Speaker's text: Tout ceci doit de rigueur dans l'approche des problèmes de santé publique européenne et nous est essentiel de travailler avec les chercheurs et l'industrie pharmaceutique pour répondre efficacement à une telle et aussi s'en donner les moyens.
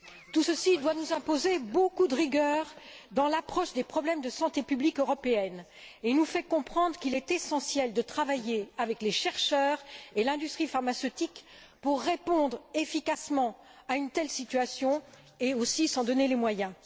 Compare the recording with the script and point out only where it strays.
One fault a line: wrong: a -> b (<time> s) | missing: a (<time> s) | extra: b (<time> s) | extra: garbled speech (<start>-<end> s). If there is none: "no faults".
extra: nous imposer beaucoup (0.9 s)
extra: fait comprendre qu'il (6.2 s)
extra: situation (14.3 s)